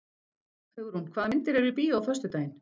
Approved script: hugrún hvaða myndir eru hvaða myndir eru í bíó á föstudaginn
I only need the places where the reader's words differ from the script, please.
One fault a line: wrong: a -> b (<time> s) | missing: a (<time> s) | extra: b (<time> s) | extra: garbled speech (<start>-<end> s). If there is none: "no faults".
missing: hvaða myndir eru (1.7 s)